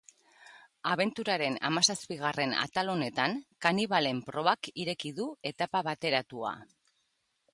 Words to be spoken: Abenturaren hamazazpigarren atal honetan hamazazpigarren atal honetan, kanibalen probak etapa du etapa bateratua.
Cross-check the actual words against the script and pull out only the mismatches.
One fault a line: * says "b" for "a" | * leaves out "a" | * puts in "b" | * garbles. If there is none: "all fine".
* leaves out "hamazazpigarren atal honetan"
* says "ireki" for "etapa"